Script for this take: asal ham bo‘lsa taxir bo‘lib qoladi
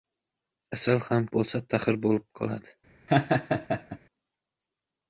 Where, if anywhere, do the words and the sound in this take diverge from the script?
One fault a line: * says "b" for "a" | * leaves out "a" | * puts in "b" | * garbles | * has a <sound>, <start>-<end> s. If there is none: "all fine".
* has a laugh, 3.1-4.0 s